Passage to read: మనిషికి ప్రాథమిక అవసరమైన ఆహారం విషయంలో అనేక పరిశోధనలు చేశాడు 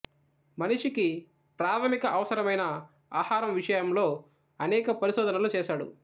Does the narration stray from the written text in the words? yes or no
no